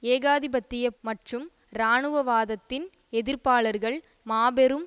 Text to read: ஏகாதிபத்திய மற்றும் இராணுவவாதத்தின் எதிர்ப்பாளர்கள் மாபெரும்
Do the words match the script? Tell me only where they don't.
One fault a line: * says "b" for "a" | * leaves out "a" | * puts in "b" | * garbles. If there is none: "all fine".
all fine